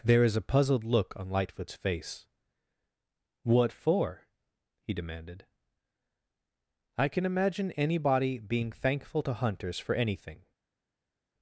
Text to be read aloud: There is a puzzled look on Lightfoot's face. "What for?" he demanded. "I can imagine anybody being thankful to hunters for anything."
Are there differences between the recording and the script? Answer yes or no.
no